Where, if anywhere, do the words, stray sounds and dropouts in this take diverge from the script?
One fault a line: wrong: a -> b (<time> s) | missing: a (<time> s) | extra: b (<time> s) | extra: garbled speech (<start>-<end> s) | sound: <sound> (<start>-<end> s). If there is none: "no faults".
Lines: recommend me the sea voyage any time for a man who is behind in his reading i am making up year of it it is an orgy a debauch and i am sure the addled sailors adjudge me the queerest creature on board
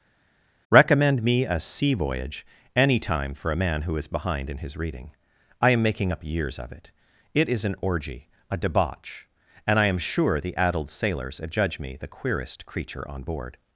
wrong: the -> a (1.5 s)
wrong: year -> years (6.2 s)